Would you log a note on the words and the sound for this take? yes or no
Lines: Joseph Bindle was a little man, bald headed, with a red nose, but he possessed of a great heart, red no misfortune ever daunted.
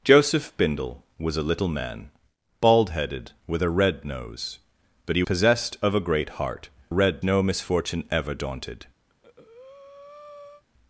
yes